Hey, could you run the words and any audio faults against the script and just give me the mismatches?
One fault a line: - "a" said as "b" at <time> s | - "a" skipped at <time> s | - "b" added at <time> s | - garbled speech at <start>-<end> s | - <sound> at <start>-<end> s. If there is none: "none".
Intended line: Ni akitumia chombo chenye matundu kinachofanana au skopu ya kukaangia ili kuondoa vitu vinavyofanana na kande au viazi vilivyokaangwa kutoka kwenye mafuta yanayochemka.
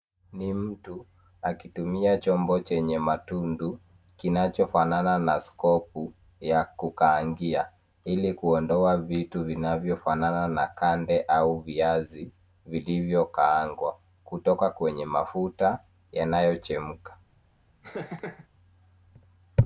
- "mtu" added at 0.5 s
- "au" said as "na" at 5.2 s
- laugh at 17.8-18.5 s